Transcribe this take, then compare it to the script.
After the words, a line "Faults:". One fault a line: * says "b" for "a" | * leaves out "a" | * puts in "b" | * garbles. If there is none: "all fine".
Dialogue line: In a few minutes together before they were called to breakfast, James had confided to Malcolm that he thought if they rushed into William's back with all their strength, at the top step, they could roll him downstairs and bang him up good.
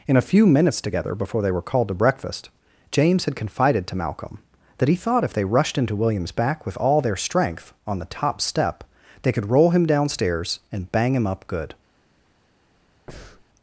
In a few minutes together before they were called to breakfast, James had confided to Malcolm that he thought if they rushed into William's back with all their strength, on the top step, they could roll him downstairs and bang him up good.
Faults:
* says "on" for "at"